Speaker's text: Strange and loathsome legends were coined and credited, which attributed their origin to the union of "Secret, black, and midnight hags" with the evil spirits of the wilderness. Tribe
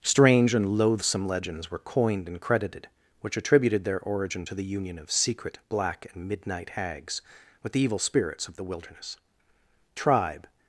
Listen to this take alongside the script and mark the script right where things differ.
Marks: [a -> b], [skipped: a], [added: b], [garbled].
Strange and loathsome legends were coined and credited, which attributed their origin to the union of "Secret, black, and midnight hags" with the evil spirits of the wilderness. Tribe